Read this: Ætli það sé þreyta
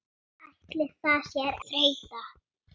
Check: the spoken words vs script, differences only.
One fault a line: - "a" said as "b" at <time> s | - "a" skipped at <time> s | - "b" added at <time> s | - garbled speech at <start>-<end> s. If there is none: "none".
none